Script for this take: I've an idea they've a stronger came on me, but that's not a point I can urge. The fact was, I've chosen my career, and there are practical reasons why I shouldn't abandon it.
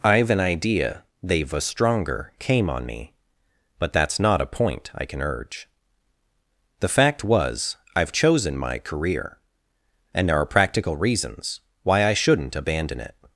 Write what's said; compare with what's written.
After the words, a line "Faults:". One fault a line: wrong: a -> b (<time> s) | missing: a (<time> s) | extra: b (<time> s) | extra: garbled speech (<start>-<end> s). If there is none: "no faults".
I've an idea they've a stronger came on me, but that's not a point I can urge. The fact was, I've chosen my career, and there are practical reasons why I shouldn't abandon it.
Faults:
no faults